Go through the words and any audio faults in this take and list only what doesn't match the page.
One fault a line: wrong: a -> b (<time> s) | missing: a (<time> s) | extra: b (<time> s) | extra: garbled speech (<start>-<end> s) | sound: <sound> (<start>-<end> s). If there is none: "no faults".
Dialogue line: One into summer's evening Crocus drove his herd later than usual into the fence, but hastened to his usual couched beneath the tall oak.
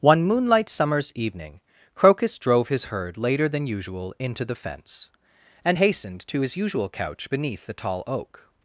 wrong: into -> moonlight (0.2 s)
wrong: but -> and (5.6 s)
wrong: couched -> couch (6.9 s)